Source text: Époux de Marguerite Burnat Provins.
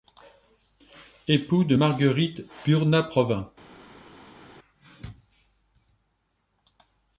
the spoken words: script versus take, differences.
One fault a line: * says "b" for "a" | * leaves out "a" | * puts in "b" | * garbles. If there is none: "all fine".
all fine